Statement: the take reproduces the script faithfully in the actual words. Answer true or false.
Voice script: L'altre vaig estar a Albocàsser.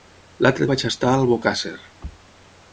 true